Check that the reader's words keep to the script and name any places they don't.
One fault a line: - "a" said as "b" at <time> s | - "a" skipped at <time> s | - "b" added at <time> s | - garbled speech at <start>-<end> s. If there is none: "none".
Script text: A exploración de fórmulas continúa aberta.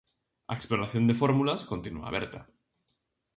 none